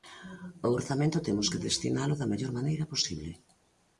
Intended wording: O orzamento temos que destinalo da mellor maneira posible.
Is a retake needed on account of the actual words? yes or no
no